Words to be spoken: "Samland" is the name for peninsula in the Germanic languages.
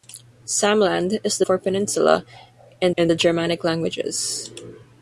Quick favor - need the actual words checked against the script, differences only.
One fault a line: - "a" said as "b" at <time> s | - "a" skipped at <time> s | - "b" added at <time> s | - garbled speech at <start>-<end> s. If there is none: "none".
- "name" skipped at 1.4 s
- "in" added at 3.0 s